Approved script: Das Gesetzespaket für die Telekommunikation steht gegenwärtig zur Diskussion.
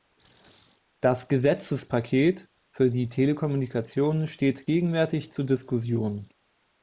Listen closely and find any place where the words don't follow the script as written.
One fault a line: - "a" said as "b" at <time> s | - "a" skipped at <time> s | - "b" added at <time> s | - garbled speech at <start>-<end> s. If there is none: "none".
none